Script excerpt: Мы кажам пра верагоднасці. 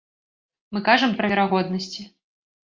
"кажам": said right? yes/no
yes